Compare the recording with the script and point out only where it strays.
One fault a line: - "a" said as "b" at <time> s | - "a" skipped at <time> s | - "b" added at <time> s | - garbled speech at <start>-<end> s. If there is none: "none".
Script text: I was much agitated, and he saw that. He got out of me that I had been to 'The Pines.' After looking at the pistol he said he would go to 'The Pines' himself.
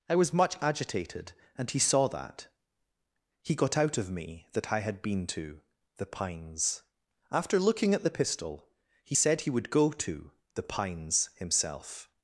none